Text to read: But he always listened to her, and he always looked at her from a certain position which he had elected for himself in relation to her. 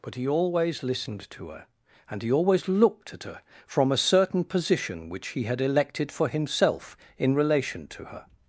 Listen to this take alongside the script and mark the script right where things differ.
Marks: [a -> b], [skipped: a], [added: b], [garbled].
But he always listened to her, and he always looked at her from a certain position which he had elected for himself in relation to her.